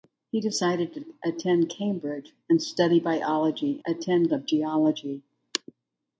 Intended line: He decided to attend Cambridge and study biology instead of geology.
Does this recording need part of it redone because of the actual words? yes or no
yes